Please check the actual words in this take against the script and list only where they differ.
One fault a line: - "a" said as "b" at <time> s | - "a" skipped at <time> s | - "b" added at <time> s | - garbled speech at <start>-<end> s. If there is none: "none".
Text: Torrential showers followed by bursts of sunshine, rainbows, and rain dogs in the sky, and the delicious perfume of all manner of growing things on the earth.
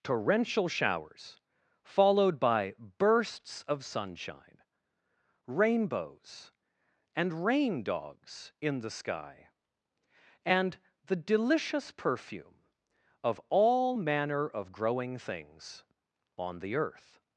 none